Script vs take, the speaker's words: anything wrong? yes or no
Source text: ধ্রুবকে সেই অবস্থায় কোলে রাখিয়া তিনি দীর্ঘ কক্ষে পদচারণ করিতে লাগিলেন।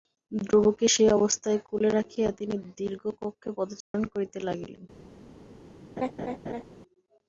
no